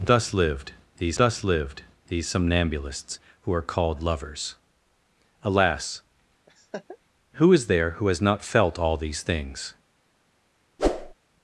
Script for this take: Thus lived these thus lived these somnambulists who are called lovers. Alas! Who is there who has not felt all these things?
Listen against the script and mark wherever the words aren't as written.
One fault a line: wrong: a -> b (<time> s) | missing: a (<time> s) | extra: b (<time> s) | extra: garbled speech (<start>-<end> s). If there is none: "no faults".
no faults